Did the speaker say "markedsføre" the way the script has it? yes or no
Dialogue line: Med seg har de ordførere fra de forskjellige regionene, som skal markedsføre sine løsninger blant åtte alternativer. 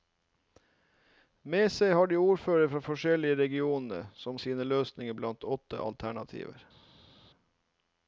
no